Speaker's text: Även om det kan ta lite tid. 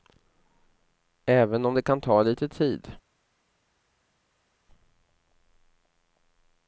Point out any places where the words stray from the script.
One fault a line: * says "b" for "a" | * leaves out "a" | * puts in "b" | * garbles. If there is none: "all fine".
all fine